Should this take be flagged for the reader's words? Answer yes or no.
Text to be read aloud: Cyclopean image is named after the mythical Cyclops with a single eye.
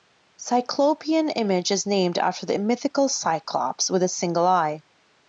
no